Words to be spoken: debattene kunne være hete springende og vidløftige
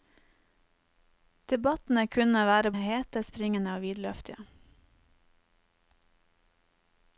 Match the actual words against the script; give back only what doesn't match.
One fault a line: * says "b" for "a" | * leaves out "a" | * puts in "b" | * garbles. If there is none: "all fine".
all fine